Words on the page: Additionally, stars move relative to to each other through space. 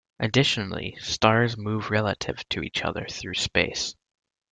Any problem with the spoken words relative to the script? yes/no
yes